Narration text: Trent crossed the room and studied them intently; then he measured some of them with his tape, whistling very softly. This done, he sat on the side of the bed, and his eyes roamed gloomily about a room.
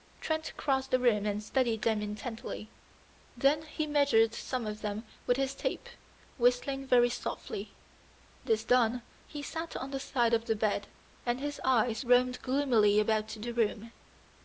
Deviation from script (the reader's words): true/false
true